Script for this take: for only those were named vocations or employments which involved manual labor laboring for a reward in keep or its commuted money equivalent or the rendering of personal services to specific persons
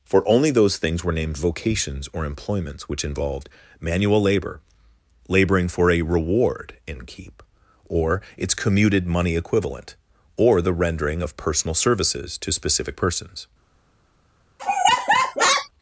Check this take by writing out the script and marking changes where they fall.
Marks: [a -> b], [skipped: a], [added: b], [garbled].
for only those [added: things] were named vocations or employments which involved manual labor laboring for a reward in keep or its commuted money equivalent or the rendering of personal services to specific persons